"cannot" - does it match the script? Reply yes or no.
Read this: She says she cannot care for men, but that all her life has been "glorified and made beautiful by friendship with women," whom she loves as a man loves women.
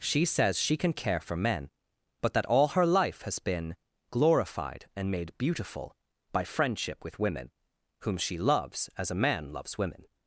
no